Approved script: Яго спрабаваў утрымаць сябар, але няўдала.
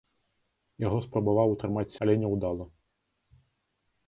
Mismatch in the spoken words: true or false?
true